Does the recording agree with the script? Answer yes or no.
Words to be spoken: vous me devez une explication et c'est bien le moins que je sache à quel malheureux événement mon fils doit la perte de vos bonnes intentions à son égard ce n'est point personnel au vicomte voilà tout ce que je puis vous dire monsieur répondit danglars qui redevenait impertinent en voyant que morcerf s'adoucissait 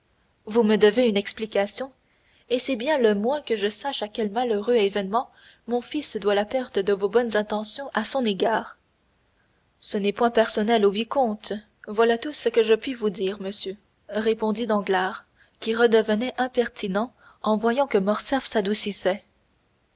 yes